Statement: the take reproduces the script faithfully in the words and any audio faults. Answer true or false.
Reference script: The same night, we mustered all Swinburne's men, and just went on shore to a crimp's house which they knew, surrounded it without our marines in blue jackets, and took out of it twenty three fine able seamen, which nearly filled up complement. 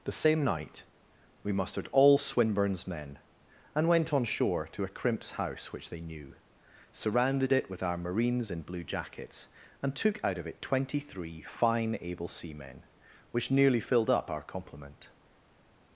false